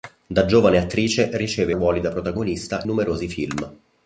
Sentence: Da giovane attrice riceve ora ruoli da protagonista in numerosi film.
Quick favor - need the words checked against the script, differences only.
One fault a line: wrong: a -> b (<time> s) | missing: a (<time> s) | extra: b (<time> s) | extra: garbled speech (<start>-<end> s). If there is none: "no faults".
missing: ora (1.8 s)
missing: in (2.8 s)